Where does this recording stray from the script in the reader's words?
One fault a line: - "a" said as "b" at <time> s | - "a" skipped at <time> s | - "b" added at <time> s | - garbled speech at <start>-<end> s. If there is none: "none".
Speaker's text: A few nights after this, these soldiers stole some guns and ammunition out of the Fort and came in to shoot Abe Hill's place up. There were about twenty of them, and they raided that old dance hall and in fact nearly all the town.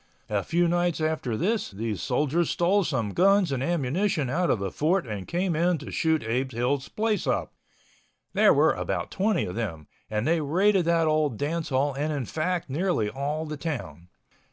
none